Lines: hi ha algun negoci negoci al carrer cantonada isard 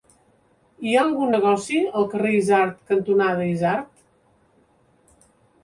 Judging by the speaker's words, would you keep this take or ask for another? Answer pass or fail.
fail